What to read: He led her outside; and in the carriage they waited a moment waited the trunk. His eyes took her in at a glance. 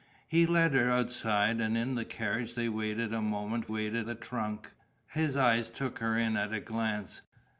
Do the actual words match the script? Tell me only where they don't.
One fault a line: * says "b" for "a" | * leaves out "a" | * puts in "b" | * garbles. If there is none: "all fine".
all fine